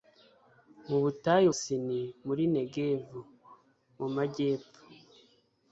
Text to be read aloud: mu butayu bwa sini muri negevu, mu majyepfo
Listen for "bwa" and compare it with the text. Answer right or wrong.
wrong